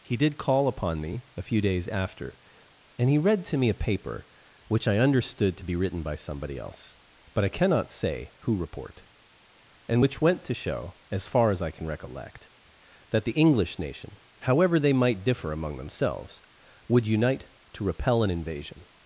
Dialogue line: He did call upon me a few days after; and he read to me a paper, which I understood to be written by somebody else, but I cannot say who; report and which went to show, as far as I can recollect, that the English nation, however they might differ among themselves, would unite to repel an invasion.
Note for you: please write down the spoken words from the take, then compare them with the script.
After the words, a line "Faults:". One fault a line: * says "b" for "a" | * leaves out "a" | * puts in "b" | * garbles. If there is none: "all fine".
He did call upon me a few days after; and he read to me a paper, which I understood to be written by somebody else, but I cannot say who; report and which went to show, as far as I can recollect, that the English nation, however they might differ among themselves, would unite to repel an invasion.
Faults:
all fine